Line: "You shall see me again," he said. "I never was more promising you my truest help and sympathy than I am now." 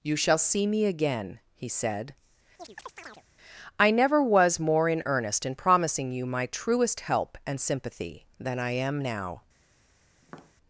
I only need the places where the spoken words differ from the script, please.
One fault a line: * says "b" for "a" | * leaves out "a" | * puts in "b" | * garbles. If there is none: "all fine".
* puts in "in earnest in"